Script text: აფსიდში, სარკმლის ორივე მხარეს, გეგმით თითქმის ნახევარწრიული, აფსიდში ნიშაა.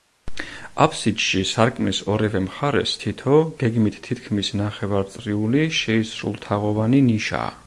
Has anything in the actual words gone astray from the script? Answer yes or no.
yes